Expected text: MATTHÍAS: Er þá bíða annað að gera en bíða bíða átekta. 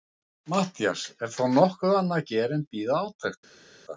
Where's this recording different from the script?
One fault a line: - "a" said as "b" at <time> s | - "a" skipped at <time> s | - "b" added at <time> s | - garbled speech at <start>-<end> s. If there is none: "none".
- "bíða" said as "nokkuð" at 1.6 s
- "bíða" skipped at 3.0 s